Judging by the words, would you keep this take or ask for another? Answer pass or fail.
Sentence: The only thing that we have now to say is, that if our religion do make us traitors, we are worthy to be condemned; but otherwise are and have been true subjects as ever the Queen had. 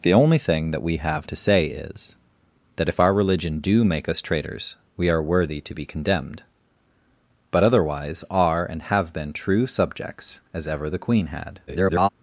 fail